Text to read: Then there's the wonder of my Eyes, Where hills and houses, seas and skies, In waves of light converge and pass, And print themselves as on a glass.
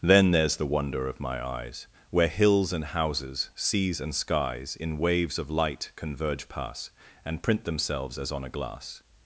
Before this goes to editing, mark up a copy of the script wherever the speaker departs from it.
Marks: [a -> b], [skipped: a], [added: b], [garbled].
Then there's the wonder of my Eyes, Where hills and houses, seas and skies, In waves of light converge [skipped: and] pass, And print themselves as on a glass.